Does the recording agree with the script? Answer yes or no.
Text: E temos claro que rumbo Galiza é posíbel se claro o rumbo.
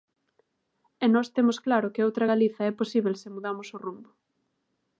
no